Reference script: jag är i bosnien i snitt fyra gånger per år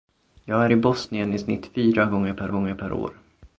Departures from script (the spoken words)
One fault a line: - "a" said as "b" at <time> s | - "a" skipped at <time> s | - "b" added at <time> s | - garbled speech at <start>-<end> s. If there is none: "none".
- "gånger per" added at 2.5 s